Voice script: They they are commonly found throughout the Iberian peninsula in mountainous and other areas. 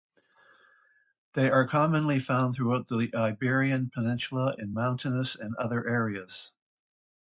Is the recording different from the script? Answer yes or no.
yes